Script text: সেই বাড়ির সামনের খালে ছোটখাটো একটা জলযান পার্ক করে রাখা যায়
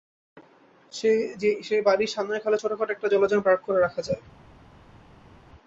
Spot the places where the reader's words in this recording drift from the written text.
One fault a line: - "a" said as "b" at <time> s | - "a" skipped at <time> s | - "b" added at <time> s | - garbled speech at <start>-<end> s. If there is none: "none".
none